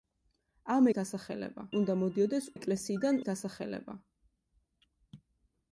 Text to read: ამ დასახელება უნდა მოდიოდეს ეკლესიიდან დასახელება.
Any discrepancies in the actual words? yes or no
no